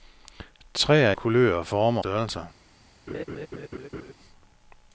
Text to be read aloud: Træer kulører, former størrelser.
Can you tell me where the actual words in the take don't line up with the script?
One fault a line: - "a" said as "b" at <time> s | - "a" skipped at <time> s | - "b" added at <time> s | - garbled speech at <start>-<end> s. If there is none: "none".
none